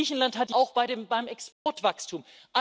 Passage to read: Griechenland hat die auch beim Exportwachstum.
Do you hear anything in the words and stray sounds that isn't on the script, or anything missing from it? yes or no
yes